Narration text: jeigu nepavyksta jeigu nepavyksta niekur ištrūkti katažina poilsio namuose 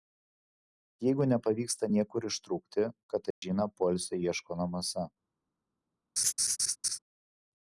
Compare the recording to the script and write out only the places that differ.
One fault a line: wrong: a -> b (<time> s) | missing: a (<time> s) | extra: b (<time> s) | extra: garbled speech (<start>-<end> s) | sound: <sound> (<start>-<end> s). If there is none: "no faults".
missing: jeigu nepavyksta (1.9 s)
sound: dropout (3.3-3.4 s)
extra: ieško (4.3 s)
sound: laugh (6.2-7.0 s)